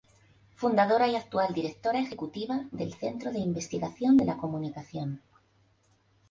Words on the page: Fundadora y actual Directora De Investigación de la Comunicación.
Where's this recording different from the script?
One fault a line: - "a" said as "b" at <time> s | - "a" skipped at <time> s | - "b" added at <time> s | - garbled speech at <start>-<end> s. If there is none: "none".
- "Ejecutiva del Centro" added at 2.0 s